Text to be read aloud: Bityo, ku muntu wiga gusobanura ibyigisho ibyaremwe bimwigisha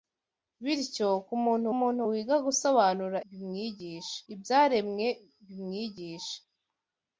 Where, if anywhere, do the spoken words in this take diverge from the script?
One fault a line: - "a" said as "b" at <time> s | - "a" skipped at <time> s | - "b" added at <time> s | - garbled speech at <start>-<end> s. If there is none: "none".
- "muntu" added at 1.8 s
- "ibyigisho" said as "bimwigisha" at 3.3 s